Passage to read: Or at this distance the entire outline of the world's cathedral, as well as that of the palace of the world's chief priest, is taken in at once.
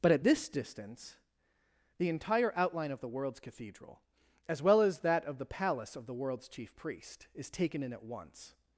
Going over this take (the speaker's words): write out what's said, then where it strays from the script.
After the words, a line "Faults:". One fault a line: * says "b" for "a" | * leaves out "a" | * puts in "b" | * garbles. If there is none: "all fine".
But at this distance the entire outline of the world's cathedral, as well as that of the palace of the world's chief priest, is taken in at once.
Faults:
* says "But" for "Or"